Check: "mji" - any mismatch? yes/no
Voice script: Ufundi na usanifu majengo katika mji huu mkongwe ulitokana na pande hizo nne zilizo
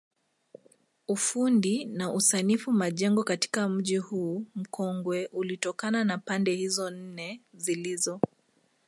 no